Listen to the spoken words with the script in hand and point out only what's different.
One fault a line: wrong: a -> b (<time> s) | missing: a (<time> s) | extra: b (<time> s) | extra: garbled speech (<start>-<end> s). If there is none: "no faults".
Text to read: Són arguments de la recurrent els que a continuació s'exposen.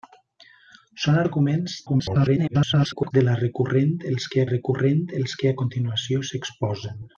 extra: garbled speech (1.9-3.1 s)
extra: recurrent els que (4.5 s)